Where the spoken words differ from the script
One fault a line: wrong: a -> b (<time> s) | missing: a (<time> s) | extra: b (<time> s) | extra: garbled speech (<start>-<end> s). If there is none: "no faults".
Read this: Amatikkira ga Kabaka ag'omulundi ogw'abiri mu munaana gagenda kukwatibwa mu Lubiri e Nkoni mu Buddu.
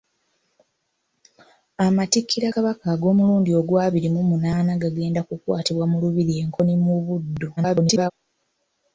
missing: ga (2.5 s)
extra: garbled speech (7.6-8.1 s)